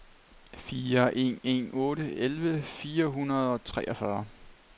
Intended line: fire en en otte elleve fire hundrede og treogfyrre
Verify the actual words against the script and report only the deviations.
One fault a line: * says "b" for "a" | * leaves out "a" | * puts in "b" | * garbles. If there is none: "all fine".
all fine